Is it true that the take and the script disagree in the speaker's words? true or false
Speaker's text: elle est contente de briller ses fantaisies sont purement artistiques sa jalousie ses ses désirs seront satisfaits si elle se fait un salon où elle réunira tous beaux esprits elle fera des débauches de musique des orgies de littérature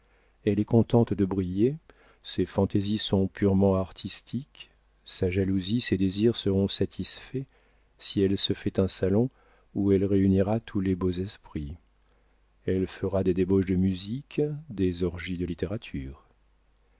true